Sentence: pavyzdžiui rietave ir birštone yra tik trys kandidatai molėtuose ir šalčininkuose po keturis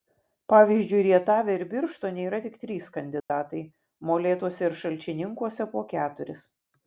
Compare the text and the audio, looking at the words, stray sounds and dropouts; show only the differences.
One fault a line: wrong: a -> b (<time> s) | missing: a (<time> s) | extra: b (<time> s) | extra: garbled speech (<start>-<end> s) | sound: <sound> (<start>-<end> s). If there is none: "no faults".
sound: dropout (3.2-3.3 s)